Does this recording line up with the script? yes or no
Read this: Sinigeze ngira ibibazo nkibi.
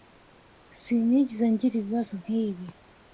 yes